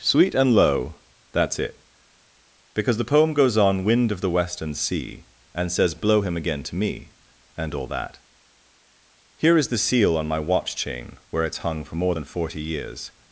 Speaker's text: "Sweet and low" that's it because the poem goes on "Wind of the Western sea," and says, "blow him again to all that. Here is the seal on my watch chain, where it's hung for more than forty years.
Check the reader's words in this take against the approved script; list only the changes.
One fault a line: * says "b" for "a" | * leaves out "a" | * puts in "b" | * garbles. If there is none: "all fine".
* puts in "me and"